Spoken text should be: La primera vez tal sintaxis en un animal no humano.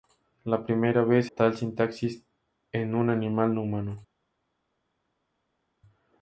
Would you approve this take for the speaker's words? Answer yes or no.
yes